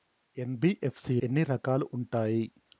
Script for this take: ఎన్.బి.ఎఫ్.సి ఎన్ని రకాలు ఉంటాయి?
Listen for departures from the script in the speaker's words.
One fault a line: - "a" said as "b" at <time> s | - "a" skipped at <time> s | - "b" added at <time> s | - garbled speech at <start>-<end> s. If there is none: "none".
none